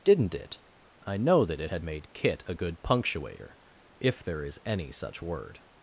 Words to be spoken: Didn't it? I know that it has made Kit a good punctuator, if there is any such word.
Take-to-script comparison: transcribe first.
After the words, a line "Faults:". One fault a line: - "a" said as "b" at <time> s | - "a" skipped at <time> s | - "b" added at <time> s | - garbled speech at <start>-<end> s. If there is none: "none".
Didn't it? I know that it had made Kit a good punctuator, if there is any such word.
Faults:
- "has" said as "had" at 1.7 s